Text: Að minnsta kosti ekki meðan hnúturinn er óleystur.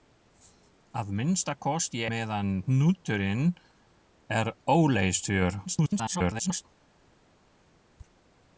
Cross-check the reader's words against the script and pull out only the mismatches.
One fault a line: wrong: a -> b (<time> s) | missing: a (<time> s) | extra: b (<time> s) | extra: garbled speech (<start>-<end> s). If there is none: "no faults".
missing: ekki (2.0 s)
extra: garbled speech (5.7-6.7 s)